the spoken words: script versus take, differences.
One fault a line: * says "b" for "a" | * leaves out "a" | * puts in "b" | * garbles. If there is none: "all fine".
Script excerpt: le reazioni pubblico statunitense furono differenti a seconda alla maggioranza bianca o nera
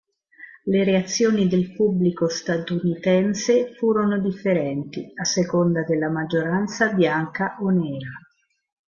* puts in "del"
* says "della" for "alla"